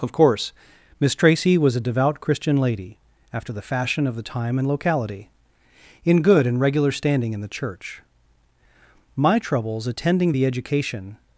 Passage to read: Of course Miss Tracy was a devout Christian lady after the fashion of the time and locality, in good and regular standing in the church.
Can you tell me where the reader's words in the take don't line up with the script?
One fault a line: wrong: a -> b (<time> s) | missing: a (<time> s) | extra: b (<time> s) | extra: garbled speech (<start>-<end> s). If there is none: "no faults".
extra: My troubles attending the education (9.2 s)